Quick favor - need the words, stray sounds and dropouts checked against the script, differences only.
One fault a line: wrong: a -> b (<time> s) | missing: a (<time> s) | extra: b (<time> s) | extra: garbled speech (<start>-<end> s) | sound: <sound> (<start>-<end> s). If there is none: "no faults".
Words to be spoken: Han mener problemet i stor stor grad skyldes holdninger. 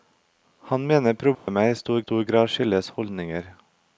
sound: dropout (1.3-1.5 s)